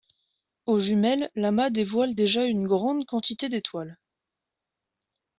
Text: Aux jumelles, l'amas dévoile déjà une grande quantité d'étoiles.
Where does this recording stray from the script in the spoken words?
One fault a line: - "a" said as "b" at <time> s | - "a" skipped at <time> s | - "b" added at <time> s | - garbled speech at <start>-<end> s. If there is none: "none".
none